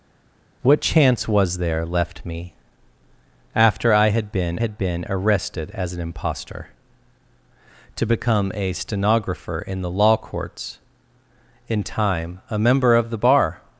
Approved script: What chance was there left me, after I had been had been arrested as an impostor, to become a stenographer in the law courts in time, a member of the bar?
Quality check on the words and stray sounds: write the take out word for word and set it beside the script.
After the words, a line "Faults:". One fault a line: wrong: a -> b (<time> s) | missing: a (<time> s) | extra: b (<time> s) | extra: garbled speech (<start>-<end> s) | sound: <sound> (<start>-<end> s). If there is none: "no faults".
What chance was there left me, after I had been had been arrested as an impostor, to become a stenographer in the law courts in time, a member of the bar?
Faults:
no faults